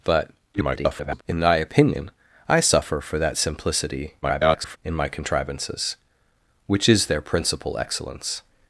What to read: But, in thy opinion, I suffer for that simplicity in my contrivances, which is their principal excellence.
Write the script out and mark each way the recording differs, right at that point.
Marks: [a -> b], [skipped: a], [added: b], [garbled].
But, [garbled] in thy opinion, I suffer for that simplicity [garbled] in my contrivances, which is their principal excellence.